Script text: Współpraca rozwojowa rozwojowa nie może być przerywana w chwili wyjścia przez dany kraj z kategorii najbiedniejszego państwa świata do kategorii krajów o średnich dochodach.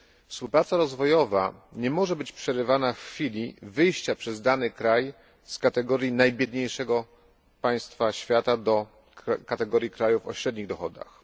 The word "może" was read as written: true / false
true